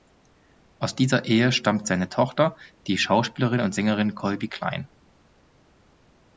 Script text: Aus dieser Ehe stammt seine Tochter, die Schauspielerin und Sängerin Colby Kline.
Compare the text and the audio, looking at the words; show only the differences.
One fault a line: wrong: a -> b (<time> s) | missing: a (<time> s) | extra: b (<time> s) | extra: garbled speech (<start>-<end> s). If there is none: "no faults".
no faults